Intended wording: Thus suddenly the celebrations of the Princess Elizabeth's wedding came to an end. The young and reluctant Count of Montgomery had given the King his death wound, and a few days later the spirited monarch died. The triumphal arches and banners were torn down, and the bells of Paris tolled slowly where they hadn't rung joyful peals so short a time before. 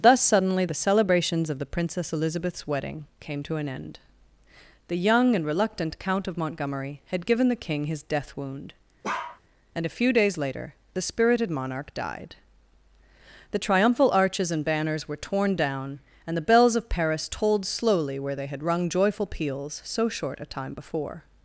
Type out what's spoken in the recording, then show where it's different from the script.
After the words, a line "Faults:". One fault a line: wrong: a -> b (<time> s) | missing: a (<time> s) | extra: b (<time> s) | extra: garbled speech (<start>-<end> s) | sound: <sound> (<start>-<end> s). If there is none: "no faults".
Thus suddenly the celebrations of the Princess Elizabeth's wedding came to an end. The young and reluctant Count of Montgomery had given the King his death wound, and a few days later the spirited monarch died. The triumphal arches and banners were torn down, and the bells of Paris tolled slowly where they had rung joyful peals so short a time before.
Faults:
sound: bark (9.0-9.4 s)
wrong: hadn't -> had (18.5 s)